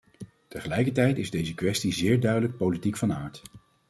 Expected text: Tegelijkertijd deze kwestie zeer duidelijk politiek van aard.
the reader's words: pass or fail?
fail